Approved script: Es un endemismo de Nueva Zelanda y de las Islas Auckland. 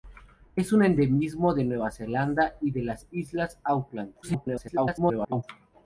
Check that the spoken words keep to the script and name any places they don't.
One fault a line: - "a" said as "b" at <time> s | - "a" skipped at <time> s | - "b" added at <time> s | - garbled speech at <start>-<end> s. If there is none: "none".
- garbled speech at 4.2-5.4 s